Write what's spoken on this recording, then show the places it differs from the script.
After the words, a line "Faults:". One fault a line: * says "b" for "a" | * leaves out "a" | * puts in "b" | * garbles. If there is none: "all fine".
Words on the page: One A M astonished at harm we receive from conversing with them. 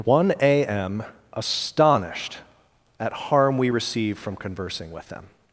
One A M astonished at harm we receive from conversing with them.
Faults:
all fine